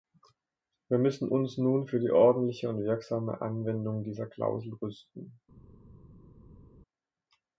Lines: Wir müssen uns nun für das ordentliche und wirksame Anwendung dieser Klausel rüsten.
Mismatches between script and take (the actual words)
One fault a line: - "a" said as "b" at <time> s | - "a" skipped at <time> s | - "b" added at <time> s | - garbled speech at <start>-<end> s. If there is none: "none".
- "das" said as "die" at 2.0 s